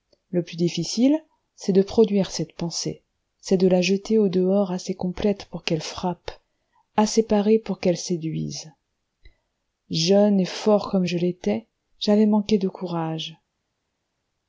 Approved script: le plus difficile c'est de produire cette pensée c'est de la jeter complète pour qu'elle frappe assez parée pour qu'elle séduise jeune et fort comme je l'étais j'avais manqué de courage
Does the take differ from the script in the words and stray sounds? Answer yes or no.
yes